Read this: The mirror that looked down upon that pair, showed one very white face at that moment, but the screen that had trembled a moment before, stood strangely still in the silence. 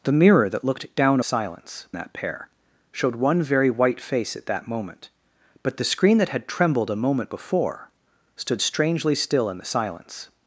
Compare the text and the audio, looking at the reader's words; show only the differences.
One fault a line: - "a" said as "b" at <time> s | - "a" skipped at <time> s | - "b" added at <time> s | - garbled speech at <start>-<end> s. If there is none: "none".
- "upon" said as "silence" at 1.2 s